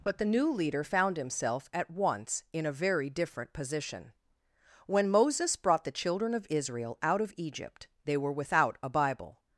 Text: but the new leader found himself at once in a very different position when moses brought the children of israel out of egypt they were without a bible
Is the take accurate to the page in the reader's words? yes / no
yes